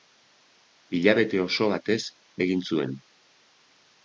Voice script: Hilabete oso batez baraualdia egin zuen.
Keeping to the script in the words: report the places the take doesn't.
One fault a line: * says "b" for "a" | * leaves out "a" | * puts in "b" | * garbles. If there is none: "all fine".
* leaves out "baraualdia"